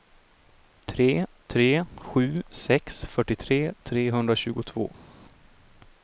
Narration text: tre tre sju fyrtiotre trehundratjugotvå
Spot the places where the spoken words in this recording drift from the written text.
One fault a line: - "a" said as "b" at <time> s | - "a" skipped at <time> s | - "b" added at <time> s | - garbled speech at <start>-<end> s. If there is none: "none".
- "sex" added at 2.6 s